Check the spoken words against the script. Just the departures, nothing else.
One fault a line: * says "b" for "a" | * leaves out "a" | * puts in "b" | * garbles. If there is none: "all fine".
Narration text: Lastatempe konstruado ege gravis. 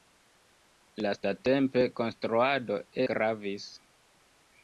* leaves out "ege"